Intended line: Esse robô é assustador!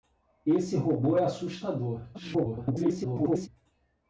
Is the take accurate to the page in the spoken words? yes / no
no